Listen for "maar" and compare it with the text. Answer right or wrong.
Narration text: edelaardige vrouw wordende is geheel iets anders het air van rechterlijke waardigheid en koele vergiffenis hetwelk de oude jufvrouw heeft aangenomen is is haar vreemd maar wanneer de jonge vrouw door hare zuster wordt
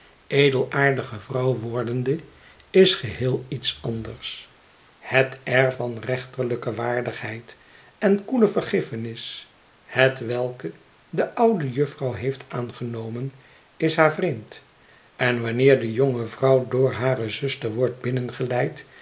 wrong